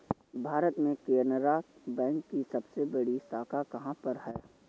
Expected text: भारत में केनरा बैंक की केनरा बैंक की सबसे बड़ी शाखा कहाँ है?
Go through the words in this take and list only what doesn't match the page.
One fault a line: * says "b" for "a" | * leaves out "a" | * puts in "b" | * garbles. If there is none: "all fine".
* leaves out "केनरा बैंक की"
* puts in "पर"